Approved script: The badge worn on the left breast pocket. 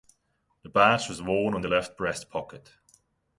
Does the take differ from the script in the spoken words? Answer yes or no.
yes